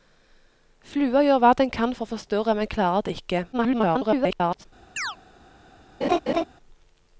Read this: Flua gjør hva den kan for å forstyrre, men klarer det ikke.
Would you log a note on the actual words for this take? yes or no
yes